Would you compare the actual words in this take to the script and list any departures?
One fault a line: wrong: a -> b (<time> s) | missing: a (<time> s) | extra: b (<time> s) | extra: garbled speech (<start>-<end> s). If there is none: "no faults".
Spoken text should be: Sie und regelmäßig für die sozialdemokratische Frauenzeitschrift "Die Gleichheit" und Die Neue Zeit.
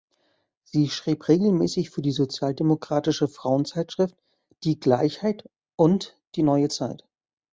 wrong: und -> schrieb (0.9 s)